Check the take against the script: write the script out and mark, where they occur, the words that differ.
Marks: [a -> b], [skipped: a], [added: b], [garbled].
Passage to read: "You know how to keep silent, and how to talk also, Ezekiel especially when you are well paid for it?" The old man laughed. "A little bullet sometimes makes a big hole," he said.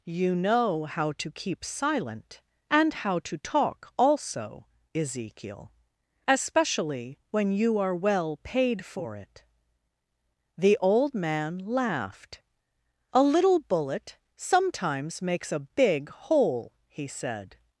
"You know how to keep silent, and how to talk also, Ezekiel especially when you are well paid for it?" The old man laughed. "A little bullet sometimes makes a big hole," he said.